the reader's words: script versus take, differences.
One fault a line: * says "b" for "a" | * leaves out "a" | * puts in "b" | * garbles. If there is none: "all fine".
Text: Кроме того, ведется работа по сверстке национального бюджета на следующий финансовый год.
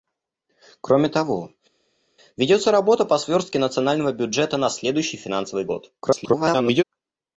* garbles